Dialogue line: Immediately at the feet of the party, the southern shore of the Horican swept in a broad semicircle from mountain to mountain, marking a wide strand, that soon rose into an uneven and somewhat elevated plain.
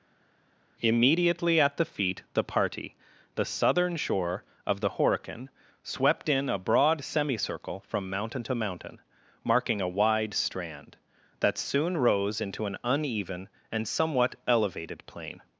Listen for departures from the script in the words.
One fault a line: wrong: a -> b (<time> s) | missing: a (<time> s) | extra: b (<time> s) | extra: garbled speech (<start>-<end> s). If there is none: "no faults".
missing: of (2.2 s)